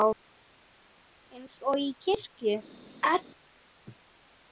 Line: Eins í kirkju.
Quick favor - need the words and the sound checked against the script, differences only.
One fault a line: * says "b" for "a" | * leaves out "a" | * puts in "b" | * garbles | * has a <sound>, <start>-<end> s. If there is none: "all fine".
* puts in "og"
* has a sneeze, 3.0-3.2 s